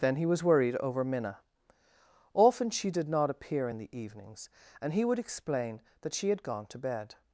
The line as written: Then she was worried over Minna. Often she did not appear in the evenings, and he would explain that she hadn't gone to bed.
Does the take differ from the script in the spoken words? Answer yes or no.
yes